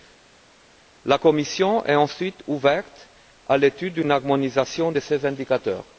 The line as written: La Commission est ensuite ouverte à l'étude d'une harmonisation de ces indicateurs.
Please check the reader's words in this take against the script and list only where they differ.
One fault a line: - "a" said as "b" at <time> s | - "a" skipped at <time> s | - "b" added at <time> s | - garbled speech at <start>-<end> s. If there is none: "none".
none